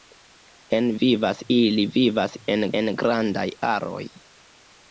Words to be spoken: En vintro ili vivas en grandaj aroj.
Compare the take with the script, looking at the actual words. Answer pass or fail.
fail